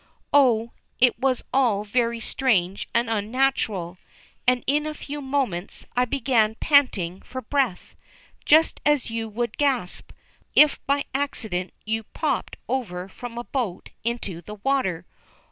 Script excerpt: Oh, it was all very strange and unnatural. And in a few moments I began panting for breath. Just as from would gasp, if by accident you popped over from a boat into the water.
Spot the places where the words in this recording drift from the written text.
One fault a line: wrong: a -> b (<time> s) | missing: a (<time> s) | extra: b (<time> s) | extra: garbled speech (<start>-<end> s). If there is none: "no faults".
wrong: from -> you (9.1 s)